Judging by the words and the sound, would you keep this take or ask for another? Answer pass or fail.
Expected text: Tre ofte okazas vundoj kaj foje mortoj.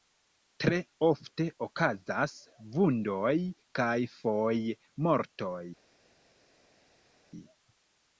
pass